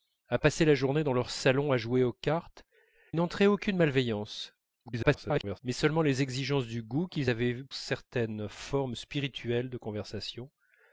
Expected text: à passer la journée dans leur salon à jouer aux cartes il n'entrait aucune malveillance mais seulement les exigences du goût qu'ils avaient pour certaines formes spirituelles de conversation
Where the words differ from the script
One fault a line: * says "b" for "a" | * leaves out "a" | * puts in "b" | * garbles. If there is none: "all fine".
* leaves out "il"
* garbles
* leaves out "pour"